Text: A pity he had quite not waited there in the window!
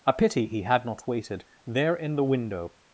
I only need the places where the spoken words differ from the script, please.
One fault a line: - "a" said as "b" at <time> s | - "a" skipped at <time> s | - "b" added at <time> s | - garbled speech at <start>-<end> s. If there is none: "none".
- "quite" skipped at 0.8 s